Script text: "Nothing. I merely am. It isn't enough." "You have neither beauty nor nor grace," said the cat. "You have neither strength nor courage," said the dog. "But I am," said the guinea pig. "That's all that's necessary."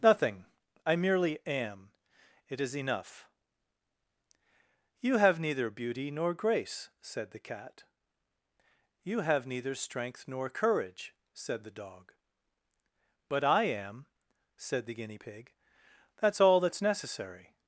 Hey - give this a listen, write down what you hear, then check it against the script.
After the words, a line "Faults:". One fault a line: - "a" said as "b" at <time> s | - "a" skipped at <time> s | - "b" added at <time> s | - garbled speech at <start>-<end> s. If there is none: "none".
"Nothing. I merely am. It is enough." "You have neither beauty nor grace," said the cat. "You have neither strength nor courage," said the dog. "But I am," said the guinea pig. "That's all that's necessary."
Faults:
- "isn't" said as "is" at 2.6 s
- "nor" skipped at 6.3 s